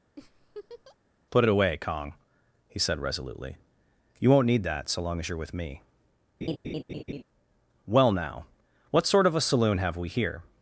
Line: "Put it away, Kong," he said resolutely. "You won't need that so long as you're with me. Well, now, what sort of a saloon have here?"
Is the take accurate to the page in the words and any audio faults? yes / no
no